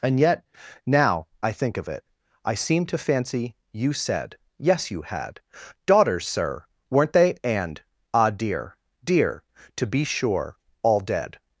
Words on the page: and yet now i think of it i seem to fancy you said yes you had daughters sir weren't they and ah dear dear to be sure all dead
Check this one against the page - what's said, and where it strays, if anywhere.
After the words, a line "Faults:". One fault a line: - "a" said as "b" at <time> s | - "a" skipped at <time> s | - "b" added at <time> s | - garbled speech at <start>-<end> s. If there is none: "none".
and yet now i think of it i seem to fancy you said yes you had daughters sir weren't they and ah dear dear to be sure all dead
Faults:
none